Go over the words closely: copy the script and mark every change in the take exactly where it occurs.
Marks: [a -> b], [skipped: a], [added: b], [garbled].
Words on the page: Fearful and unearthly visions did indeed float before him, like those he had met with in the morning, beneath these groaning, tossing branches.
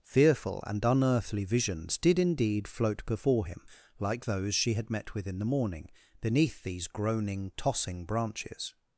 Fearful and unearthly visions did indeed float before him, like those [he -> she] had met with in the morning, beneath these groaning, tossing branches.